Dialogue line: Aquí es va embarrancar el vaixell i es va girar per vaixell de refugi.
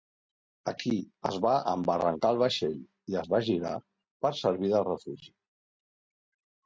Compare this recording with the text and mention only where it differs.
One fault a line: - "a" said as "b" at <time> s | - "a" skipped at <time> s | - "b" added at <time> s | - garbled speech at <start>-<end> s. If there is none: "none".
- "vaixell" said as "servir" at 4.4 s